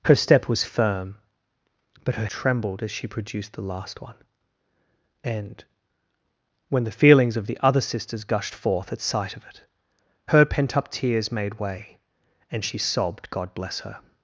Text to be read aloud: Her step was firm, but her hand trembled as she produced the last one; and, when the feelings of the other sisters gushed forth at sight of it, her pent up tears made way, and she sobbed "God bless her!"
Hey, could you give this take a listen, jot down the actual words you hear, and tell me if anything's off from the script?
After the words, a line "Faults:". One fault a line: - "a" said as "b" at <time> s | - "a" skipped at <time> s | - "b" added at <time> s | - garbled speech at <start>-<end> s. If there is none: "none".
Her step was firm, but her trembled as she produced the last one; and, when the feelings of the other sisters gushed forth at sight of it, her pent up tears made way, and she sobbed "God bless her!"
Faults:
- "hand" skipped at 2.2 s